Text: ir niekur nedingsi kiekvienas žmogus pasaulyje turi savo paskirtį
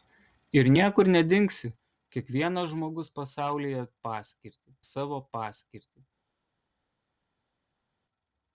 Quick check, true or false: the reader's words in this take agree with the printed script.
false